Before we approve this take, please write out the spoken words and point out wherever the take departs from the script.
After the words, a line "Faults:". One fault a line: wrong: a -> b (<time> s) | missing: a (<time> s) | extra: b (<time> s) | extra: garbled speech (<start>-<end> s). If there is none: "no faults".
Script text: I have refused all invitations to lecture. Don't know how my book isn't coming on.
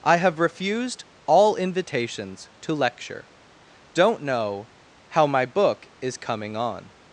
I have refused all invitations to lecture. Don't know how my book is coming on.
Faults:
wrong: isn't -> is (6.0 s)